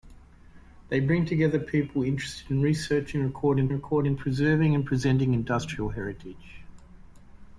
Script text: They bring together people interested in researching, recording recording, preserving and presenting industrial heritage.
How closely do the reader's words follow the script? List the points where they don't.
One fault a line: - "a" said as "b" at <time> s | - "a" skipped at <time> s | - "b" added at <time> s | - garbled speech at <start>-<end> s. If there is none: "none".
none